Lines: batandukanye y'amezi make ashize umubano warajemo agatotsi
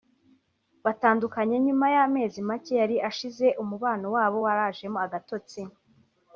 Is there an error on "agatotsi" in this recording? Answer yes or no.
no